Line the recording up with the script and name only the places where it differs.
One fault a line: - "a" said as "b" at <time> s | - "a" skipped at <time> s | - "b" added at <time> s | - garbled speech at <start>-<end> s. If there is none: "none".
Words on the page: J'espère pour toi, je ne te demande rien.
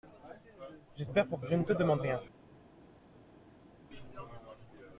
- "toi" skipped at 1.4 s